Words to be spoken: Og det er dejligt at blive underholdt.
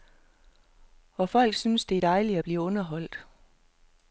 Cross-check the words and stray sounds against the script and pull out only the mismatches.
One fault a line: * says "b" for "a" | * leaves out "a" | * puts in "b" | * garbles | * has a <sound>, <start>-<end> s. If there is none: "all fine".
* puts in "folk synes"